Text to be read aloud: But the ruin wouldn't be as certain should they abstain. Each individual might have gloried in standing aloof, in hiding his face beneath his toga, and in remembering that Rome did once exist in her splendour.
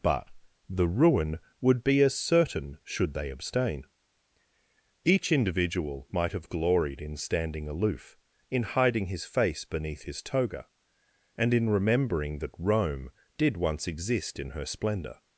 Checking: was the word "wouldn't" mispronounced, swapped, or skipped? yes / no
yes